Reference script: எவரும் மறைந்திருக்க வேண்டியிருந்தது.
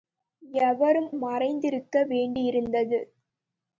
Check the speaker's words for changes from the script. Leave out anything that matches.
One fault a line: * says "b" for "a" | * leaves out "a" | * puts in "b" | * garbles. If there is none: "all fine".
all fine